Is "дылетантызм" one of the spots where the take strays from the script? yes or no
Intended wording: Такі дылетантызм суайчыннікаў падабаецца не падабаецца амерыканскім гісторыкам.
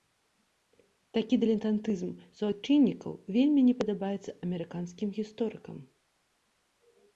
no